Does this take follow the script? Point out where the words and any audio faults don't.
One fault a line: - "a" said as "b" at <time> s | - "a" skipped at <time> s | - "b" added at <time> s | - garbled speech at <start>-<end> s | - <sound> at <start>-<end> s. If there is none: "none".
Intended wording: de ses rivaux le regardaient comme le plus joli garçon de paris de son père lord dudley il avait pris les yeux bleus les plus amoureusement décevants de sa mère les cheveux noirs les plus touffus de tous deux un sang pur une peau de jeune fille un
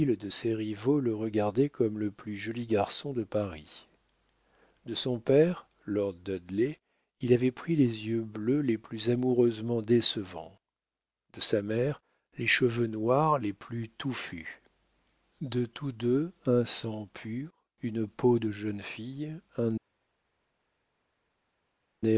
none